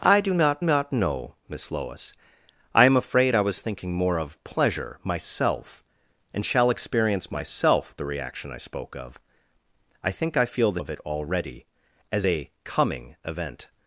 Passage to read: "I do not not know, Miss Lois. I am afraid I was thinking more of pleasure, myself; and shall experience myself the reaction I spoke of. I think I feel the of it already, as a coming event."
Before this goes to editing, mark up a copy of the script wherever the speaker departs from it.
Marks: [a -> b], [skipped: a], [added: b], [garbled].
"I do not not know, Miss Lois. I am afraid I was thinking more of pleasure, myself; and shall experience myself the reaction I spoke of. I think I feel the of it already, as a coming event."